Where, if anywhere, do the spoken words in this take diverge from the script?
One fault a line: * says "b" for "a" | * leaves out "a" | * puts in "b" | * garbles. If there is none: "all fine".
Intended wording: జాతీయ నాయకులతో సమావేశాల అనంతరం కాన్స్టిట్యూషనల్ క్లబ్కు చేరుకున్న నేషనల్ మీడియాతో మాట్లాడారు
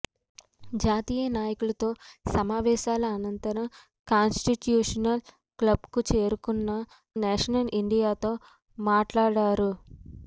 all fine